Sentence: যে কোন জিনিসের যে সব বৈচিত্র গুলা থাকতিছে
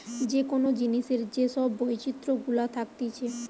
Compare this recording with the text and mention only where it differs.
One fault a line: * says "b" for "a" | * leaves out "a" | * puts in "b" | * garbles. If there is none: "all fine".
all fine